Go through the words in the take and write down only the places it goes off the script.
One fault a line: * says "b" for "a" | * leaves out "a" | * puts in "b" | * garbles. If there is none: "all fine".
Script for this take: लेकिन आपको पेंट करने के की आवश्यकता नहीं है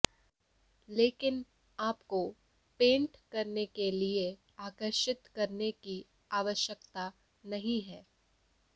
* puts in "लिए आकर्षित करने"